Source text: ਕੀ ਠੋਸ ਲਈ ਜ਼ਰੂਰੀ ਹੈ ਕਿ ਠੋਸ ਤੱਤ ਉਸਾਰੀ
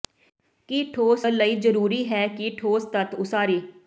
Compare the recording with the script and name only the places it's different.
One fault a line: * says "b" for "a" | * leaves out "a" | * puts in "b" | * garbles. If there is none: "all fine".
all fine